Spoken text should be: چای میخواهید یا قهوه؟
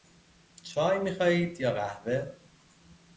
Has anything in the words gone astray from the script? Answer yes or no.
no